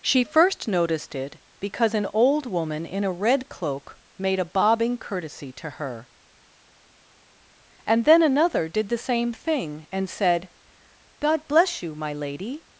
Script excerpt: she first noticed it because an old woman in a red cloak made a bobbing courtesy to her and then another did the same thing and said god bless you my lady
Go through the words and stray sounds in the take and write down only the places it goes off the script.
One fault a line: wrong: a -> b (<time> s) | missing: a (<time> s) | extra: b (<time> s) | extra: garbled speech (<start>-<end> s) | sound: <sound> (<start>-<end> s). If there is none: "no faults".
no faults